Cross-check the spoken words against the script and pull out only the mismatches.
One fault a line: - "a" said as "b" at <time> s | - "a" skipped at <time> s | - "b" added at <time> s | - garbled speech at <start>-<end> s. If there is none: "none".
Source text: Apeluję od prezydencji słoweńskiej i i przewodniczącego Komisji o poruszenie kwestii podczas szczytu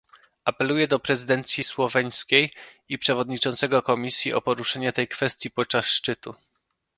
- "od" said as "do" at 0.9 s
- "i" skipped at 3.0 s
- "tej" added at 4.9 s